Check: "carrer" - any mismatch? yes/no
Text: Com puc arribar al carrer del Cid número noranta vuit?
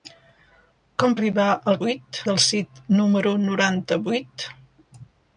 yes